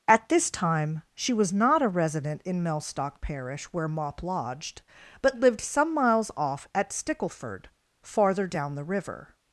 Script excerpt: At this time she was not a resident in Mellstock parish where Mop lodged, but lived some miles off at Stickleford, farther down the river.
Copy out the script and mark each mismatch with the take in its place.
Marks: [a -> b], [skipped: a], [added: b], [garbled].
At this time she was not a resident in Mellstock parish where Mop lodged, but lived some miles off at Stickleford, farther down the river.